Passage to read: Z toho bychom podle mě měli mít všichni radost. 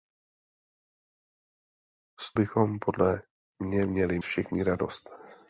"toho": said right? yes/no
no